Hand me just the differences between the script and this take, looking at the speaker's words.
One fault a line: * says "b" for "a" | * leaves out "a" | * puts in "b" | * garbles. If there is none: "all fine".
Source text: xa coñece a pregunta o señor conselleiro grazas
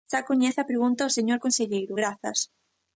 all fine